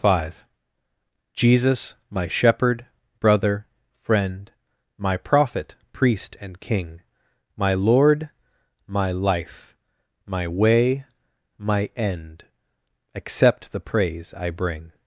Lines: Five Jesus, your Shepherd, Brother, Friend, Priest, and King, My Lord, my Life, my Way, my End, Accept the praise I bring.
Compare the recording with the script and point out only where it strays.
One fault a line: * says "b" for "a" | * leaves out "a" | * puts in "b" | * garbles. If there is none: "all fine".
* says "my" for "your"
* puts in "My Prophet"